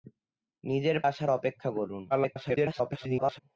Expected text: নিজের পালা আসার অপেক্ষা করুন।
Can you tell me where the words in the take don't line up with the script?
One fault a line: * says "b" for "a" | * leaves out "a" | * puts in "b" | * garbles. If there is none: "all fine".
* leaves out "পালা"
* garbles